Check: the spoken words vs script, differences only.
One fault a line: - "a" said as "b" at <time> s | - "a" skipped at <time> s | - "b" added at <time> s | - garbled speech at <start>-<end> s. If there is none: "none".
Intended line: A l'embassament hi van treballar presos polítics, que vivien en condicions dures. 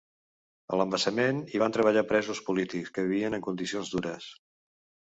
none